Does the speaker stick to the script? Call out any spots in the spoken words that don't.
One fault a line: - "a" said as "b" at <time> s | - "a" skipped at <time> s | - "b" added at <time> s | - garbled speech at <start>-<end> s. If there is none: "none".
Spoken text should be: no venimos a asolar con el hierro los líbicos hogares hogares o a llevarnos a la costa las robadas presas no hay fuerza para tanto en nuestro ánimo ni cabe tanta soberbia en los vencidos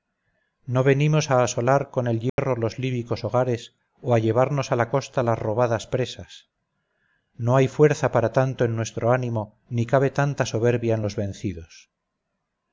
- "hogares" skipped at 3.8 s